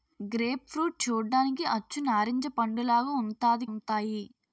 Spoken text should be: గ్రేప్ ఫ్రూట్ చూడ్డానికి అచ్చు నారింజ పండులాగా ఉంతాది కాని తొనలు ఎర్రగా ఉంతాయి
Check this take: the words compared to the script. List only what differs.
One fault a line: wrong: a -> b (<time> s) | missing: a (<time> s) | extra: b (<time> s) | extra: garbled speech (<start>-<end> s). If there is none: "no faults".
missing: కాని తొనలు ఎర్రగా (3.7 s)